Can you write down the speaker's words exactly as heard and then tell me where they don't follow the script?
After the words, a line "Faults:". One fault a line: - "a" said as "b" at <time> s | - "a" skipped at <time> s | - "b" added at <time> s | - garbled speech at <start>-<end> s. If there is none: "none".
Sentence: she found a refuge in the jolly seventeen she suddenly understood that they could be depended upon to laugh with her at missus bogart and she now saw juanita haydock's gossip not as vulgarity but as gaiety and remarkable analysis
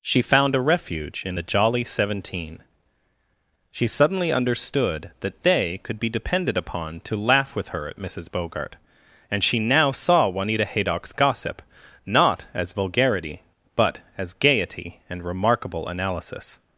she found a refuge in the jolly seventeen she suddenly understood that they could be depended upon to laugh with her at missus bogart and she now saw juanita haydock's gossip not as vulgarity but as gaiety and remarkable analysis
Faults:
none